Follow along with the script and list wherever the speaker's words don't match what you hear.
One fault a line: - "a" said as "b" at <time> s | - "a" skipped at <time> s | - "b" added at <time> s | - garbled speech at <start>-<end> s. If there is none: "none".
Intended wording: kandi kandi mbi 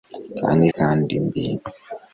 none